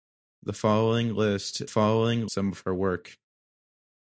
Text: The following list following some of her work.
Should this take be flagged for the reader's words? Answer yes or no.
no